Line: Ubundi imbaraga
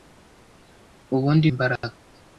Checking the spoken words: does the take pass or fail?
pass